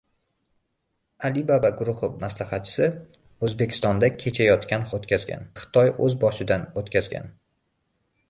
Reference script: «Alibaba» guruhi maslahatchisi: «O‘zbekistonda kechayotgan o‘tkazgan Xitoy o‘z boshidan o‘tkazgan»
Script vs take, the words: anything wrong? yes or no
no